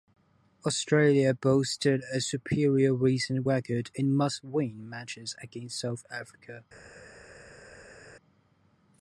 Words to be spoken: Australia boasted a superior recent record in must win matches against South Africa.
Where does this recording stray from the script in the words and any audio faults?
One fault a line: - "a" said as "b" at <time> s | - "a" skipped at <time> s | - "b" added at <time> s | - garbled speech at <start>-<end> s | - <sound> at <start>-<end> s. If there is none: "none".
none